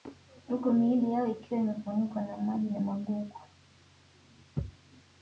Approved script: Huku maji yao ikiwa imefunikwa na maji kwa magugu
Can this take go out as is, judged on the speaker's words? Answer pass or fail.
fail